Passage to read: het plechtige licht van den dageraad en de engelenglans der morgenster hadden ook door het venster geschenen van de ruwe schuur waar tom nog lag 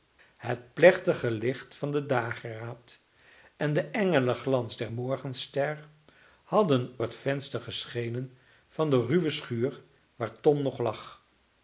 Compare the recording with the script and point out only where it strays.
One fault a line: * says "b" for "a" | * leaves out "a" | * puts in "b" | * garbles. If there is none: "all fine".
* leaves out "ook door"